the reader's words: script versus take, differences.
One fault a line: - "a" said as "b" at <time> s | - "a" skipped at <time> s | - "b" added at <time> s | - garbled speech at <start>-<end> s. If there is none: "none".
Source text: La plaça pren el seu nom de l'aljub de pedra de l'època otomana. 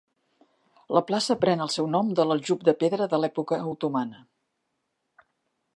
none